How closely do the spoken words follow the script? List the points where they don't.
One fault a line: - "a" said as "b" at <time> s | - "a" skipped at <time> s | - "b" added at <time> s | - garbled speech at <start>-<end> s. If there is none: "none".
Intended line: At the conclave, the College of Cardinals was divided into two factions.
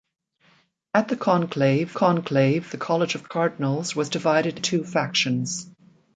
- "conclave" added at 1.9 s
- "into" skipped at 4.6 s